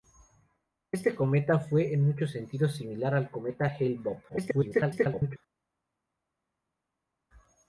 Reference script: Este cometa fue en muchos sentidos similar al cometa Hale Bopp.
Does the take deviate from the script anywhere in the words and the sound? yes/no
yes